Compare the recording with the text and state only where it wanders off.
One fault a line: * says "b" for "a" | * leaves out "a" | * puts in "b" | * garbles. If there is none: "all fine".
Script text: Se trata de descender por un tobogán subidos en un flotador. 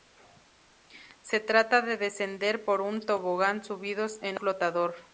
* leaves out "un"